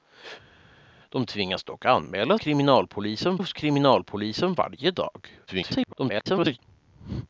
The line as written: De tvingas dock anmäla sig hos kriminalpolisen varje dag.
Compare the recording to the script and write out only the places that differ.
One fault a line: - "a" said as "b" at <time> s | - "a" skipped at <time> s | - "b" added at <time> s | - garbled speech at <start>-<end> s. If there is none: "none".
- "sig" said as "kriminalpolisen" at 2.4 s
- garbled speech at 5.5-6.6 s